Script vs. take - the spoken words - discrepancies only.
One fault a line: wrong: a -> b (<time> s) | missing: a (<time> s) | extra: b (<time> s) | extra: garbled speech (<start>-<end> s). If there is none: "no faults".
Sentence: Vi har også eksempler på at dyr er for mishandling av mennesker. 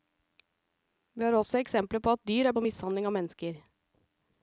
no faults